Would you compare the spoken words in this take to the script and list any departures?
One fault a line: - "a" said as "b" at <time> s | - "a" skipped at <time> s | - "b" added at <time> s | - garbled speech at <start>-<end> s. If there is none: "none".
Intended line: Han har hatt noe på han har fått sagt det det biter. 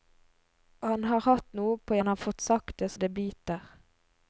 none